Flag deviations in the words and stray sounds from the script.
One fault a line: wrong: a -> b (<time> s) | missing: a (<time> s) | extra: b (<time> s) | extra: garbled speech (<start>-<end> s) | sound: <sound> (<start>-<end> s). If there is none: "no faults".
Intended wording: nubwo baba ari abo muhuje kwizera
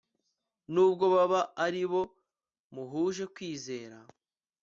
no faults